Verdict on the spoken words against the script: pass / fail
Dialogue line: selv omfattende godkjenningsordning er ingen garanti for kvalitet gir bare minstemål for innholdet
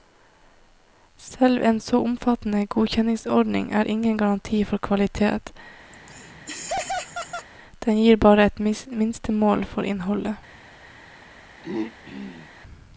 fail